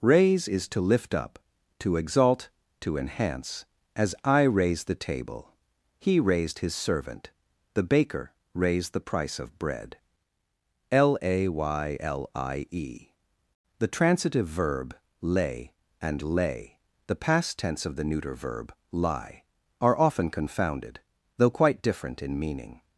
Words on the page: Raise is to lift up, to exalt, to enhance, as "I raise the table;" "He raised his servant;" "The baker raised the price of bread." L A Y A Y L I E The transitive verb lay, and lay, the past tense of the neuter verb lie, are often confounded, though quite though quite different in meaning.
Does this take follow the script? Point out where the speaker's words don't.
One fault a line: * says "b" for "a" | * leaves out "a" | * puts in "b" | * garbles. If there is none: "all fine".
* leaves out "A Y"
* leaves out "though quite"